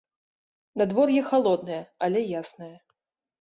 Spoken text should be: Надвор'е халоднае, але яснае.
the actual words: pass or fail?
pass